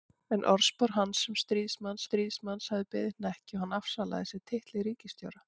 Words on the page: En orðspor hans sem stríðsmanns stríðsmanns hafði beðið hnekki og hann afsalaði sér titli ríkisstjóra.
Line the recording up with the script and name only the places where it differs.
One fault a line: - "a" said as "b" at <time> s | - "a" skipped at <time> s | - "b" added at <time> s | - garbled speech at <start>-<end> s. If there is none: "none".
none